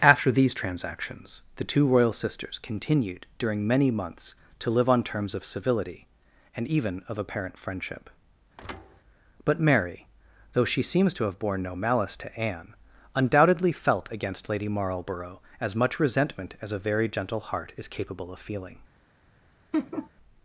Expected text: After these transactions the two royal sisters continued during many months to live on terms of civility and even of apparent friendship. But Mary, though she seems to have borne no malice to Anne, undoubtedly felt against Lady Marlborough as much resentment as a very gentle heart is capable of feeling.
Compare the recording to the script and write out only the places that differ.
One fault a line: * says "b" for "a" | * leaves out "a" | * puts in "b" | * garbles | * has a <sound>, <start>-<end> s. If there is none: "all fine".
* has a thud, 8.6-9.0 s
* has a laugh, 19.7-20.1 s